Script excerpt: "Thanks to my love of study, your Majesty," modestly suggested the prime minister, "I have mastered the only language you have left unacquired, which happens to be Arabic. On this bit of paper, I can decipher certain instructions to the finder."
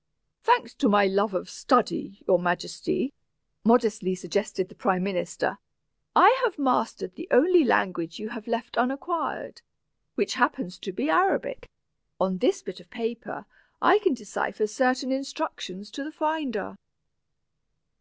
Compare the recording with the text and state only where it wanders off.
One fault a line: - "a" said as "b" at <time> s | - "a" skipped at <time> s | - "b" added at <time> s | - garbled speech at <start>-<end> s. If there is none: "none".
none